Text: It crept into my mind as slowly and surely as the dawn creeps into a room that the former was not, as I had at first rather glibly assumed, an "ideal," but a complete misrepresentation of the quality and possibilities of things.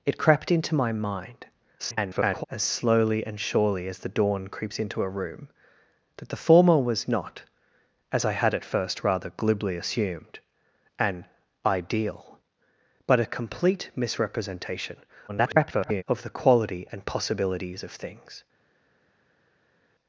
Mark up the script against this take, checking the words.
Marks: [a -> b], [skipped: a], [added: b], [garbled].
It crept into my mind [garbled] as slowly and surely as the dawn creeps into a room that the former was not, as I had at first rather glibly assumed, an "ideal," but a complete misrepresentation [garbled] of the quality and possibilities of things.